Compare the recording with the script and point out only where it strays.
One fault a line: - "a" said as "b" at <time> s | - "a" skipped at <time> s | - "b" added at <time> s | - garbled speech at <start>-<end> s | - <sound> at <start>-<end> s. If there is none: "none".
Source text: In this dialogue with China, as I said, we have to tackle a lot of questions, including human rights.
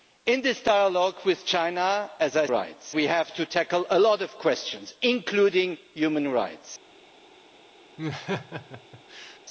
- "said" said as "rights" at 2.5 s
- laugh at 8.0-9.4 s